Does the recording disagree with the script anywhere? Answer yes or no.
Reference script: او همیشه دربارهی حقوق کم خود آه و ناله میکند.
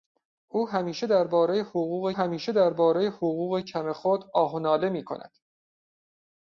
yes